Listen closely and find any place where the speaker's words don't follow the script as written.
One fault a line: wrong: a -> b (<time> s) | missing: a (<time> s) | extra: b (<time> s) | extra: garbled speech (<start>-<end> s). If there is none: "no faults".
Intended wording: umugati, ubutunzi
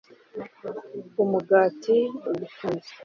no faults